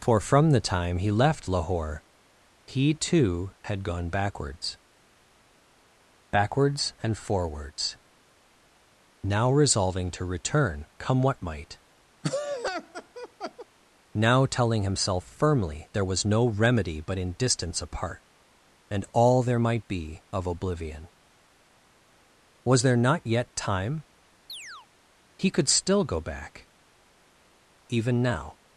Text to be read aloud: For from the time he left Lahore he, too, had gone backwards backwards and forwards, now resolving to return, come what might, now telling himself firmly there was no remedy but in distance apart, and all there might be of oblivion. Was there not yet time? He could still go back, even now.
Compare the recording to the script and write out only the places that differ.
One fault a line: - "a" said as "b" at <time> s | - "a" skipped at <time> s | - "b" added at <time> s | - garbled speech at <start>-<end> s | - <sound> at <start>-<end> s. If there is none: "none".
- laugh at 12.2-13.7 s
- chirp at 24.5-24.9 s